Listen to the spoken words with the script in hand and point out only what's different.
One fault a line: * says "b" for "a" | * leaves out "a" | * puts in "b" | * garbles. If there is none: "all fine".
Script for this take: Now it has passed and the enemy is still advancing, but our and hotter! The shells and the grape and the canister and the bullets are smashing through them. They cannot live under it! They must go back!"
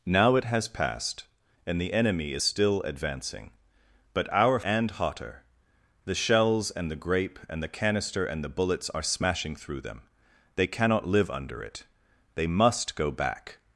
all fine